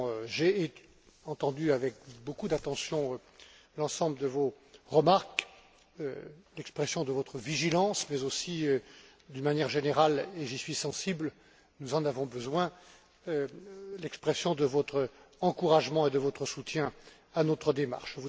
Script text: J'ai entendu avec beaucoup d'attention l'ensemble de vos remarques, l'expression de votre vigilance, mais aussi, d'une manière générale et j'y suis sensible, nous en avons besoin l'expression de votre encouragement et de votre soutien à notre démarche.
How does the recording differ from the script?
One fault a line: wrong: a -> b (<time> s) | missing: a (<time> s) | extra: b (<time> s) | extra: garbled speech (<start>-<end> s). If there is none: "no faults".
no faults